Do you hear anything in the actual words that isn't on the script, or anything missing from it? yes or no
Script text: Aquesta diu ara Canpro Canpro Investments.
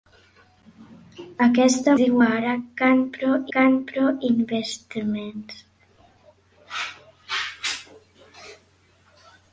no